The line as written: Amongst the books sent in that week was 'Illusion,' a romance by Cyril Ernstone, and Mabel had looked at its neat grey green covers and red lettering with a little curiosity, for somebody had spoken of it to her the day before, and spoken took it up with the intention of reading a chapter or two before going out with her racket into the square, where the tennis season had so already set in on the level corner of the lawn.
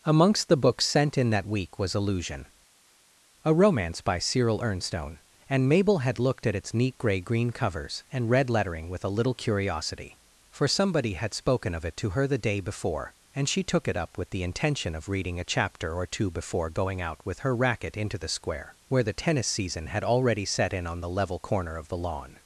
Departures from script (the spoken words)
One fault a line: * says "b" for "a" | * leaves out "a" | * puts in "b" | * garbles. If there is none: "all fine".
* says "she" for "spoken"
* leaves out "so"